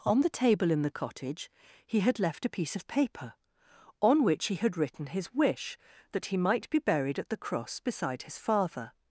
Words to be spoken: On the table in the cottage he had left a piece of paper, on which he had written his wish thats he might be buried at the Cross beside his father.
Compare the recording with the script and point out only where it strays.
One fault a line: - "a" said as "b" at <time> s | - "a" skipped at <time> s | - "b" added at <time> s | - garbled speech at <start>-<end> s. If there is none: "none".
- "thats" said as "that" at 6.1 s